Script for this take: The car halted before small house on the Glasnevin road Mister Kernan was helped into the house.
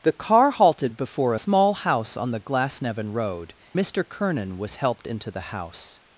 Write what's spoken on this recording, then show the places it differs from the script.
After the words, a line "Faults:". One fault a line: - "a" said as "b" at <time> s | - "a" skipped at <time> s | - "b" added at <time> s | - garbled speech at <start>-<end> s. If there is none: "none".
The car halted before small house on the Glasnevin road Mister Kernan was helped into the house.
Faults:
none